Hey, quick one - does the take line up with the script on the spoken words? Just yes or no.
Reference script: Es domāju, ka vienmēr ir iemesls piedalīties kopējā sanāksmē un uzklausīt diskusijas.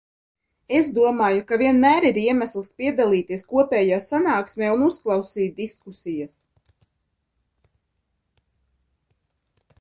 yes